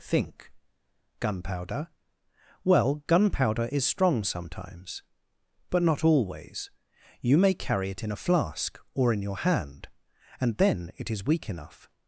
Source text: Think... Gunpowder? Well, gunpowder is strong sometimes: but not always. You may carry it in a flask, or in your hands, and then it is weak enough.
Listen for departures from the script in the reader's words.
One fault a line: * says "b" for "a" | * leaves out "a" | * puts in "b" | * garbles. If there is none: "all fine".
* says "hand" for "hands"